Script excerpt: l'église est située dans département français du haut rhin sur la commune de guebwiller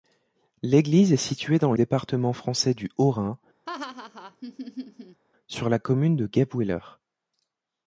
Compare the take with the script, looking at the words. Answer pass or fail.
pass